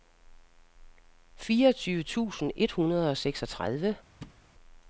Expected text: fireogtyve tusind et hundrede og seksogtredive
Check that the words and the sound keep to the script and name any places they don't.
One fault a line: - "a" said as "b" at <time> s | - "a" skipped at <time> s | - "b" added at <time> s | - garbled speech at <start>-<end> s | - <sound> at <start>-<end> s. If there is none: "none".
- thud at 4.2-4.4 s